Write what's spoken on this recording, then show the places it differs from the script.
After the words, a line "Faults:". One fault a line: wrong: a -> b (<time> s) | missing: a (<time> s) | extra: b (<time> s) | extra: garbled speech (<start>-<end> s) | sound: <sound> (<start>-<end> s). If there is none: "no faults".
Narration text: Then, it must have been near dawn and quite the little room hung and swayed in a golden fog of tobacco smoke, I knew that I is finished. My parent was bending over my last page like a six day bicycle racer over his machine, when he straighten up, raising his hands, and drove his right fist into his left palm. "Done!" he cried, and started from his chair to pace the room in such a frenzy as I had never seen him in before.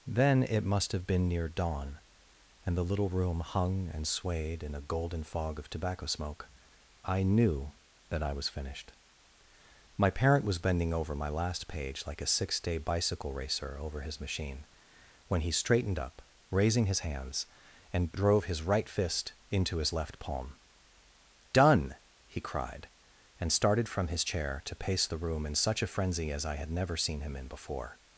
Then, it must have been near dawn and the little room hung and swayed in a golden fog of tobacco smoke, I knew that I was finished. My parent was bending over my last page like a six day bicycle racer over his machine, when he straightened up, raising his hands, and drove his right fist into his left palm. "Done!" he cried, and started from his chair to pace the room in such a frenzy as I had never seen him in before.
Faults:
missing: quite (2.8 s)
wrong: is -> was (8.3 s)
wrong: straighten -> straightened (15.5 s)